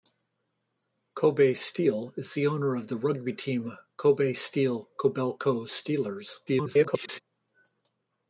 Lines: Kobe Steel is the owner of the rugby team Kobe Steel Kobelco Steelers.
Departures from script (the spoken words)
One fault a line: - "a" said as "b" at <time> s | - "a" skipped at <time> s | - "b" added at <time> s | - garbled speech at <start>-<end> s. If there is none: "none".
- garbled speech at 6.5-7.2 s